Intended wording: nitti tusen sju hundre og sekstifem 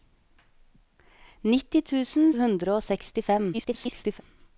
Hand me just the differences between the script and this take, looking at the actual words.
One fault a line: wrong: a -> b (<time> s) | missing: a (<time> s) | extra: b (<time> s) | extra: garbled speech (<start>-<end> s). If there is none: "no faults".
missing: sju (2.3 s)
extra: garbled speech (3.5-4.2 s)